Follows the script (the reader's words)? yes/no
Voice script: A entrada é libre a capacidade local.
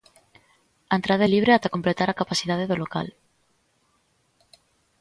no